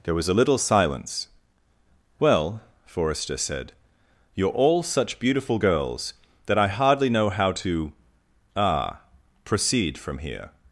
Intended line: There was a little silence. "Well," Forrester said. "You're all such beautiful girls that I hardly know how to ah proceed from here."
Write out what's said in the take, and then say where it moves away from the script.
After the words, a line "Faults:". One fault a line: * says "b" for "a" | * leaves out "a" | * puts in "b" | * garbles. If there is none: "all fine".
There was a little silence. "Well," Forrester said. "You're all such beautiful girls that I hardly know how to ah proceed from here."
Faults:
all fine